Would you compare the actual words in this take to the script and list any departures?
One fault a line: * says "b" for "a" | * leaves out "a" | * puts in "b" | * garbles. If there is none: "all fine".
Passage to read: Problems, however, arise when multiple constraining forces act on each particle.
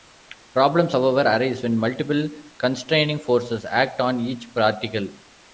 all fine